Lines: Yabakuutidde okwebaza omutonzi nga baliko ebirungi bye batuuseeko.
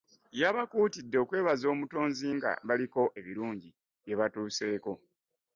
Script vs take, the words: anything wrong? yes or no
no